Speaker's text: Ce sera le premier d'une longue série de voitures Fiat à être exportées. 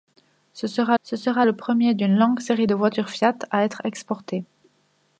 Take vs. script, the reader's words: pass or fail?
fail